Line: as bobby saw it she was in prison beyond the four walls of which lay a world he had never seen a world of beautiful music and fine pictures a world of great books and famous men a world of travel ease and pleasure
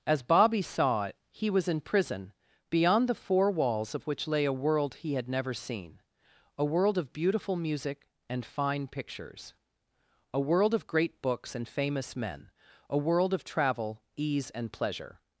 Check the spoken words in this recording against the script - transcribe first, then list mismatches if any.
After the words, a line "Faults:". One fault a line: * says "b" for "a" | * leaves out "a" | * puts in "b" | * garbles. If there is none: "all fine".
as bobby saw it he was in prison beyond the four walls of which lay a world he had never seen a world of beautiful music and fine pictures a world of great books and famous men a world of travel ease and pleasure
Faults:
* says "he" for "she"